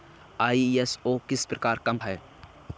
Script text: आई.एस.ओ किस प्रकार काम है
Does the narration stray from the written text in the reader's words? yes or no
no